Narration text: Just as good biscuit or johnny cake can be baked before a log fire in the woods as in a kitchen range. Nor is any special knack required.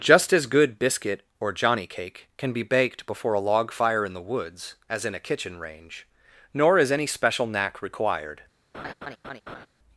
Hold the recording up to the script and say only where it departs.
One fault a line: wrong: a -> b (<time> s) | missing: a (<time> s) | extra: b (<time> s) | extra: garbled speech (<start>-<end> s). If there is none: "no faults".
no faults